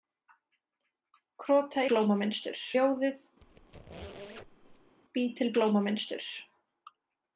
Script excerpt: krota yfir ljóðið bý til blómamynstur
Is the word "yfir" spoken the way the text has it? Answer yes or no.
no